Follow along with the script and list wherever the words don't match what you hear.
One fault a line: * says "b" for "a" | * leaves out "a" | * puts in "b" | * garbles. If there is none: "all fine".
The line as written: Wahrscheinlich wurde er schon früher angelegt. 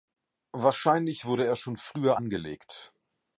all fine